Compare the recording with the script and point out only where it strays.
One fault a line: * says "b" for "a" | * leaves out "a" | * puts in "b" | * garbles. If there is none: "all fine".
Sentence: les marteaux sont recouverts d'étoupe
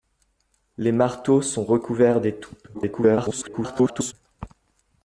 * garbles